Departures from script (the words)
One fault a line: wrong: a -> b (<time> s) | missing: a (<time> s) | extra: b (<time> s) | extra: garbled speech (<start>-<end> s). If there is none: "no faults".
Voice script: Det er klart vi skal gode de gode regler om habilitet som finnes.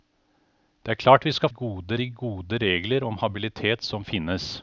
no faults